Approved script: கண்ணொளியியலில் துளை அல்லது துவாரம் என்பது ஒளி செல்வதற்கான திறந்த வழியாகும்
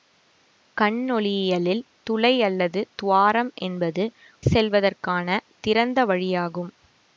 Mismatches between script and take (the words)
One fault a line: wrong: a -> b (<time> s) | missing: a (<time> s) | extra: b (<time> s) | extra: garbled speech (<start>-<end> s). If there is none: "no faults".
missing: ஒளி (4.0 s)